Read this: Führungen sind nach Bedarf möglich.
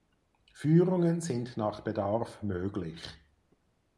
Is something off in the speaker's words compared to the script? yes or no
no